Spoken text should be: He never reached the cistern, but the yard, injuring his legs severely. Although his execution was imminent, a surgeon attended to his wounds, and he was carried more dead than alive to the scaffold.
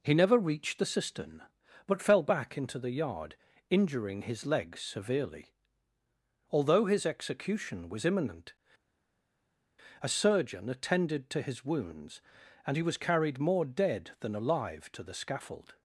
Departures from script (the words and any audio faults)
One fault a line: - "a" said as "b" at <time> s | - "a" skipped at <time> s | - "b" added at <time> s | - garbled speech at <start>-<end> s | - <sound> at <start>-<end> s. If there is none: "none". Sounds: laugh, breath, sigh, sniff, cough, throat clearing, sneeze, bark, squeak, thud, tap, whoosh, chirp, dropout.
- "fell back into" added at 2.0 s